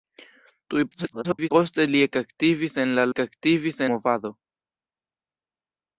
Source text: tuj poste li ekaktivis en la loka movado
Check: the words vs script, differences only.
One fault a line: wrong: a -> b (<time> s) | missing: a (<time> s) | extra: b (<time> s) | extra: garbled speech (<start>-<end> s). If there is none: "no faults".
extra: garbled speech (0.9-1.5 s)
wrong: loka -> ekaktivis (3.1 s)